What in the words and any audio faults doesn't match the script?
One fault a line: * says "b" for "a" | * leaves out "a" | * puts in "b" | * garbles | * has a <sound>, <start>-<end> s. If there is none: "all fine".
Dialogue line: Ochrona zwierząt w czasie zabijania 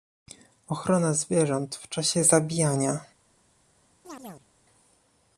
* has a chirp, 4.0-4.5 s